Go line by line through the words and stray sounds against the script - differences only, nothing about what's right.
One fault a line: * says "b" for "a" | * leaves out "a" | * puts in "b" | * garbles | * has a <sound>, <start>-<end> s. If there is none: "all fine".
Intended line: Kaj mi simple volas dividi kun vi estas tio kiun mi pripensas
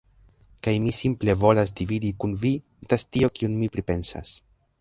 all fine